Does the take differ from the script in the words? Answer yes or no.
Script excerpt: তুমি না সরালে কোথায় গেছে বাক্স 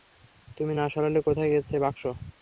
no